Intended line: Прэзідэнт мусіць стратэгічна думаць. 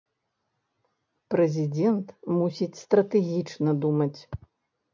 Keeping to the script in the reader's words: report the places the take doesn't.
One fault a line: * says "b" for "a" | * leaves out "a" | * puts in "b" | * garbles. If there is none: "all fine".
all fine